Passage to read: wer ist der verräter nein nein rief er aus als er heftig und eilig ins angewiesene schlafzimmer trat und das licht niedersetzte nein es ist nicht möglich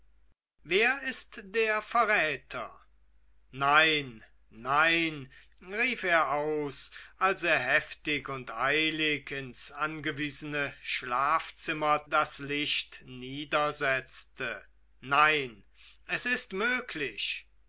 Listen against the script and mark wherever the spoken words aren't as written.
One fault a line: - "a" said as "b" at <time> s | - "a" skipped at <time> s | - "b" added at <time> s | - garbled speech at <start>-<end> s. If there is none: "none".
- "trat und" skipped at 12.1 s
- "nicht" skipped at 16.5 s